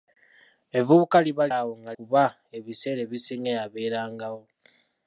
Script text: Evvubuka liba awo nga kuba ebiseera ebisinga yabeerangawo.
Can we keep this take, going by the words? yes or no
yes